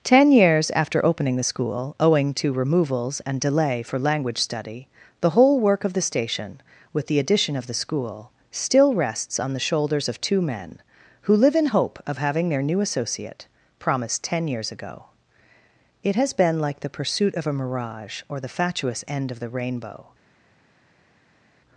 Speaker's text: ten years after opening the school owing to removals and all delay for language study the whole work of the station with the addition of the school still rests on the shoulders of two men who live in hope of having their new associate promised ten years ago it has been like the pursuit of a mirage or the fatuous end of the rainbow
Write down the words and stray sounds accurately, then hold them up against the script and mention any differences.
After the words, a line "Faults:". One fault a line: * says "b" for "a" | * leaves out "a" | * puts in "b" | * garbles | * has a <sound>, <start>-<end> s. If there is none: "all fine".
ten years after opening the school owing to removals and delay for language study the whole work of the station with the addition of the school still rests on the shoulders of two men who live in hope of having their new associate promised ten years ago it has been like the pursuit of a mirage or the fatuous end of the rainbow
Faults:
* leaves out "all"